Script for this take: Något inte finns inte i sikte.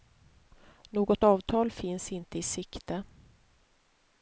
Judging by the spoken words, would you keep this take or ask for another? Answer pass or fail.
fail